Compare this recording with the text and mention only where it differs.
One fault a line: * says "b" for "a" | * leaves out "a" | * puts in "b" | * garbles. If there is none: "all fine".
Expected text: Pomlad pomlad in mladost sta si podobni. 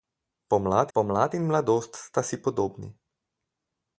all fine